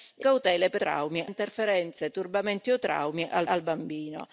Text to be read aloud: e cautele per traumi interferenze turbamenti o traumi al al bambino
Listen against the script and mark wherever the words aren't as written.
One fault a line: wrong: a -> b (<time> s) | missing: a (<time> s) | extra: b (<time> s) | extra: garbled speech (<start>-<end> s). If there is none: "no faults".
no faults